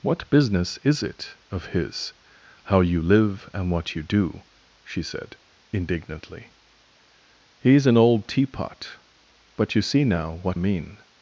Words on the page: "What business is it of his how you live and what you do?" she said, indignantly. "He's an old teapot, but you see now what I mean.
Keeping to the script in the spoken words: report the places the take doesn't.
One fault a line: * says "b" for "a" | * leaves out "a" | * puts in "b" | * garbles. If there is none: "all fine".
* leaves out "I"